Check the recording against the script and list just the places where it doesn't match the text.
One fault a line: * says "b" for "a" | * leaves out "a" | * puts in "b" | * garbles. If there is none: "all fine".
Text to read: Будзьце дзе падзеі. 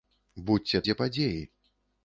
all fine